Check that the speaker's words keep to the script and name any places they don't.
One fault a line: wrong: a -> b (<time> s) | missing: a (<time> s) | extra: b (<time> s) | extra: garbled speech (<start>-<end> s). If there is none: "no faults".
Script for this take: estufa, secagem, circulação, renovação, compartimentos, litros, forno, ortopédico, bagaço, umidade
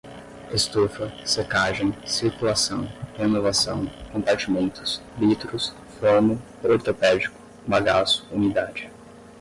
no faults